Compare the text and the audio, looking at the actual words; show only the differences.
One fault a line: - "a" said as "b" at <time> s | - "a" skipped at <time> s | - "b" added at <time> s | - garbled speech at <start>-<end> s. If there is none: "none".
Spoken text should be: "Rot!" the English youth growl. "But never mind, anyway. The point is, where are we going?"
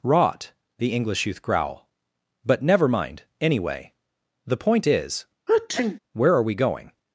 none